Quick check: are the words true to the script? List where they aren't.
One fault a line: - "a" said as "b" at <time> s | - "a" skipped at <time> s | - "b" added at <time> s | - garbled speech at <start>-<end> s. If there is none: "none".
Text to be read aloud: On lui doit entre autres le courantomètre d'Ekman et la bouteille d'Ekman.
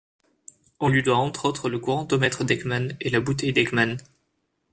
none